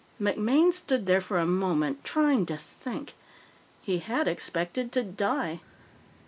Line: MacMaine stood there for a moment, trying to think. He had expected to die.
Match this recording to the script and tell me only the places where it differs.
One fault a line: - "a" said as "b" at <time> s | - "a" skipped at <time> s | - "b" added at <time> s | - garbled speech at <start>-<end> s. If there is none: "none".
none